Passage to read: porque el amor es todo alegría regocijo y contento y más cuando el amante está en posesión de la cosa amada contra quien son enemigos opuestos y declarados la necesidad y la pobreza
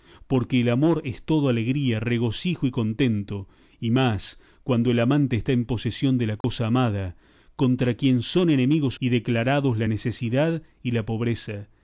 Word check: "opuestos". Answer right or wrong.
wrong